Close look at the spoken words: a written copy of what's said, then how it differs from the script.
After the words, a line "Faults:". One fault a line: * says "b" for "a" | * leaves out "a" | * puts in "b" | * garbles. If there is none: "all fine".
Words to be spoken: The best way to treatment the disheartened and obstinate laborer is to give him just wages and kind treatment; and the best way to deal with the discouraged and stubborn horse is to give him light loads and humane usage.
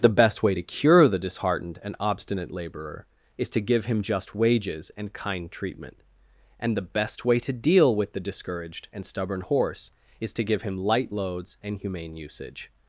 The best way to cure the disheartened and obstinate laborer is to give him just wages and kind treatment; and the best way to deal with the discouraged and stubborn horse is to give him light loads and humane usage.
Faults:
* says "cure" for "treatment"